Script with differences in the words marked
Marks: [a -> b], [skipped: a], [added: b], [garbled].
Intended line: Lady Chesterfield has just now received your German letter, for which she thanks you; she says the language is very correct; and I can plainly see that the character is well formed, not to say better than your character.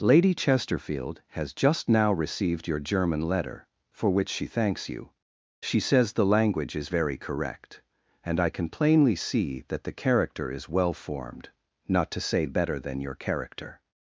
Lady Chesterfield has just now received your German letter, for which she thanks you; she says the language is very correct; and I can plainly see that the character is well formed, not to say better than your character.